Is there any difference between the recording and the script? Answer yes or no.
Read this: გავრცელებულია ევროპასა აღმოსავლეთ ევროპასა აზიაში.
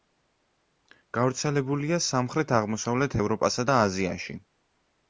yes